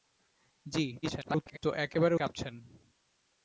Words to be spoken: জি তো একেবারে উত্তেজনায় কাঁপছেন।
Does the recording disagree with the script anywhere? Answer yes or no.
yes